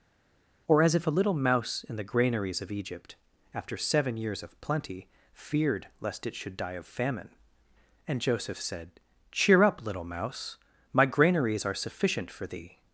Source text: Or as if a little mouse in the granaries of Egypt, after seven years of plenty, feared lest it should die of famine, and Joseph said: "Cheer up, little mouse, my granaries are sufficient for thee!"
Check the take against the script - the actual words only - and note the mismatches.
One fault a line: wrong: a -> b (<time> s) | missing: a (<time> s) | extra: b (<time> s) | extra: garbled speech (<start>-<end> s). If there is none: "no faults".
no faults